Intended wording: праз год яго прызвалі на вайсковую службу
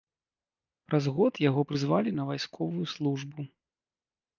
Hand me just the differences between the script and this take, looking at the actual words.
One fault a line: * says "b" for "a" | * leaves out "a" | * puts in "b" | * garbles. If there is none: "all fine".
all fine